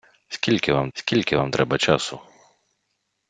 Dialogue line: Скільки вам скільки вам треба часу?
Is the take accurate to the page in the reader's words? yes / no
yes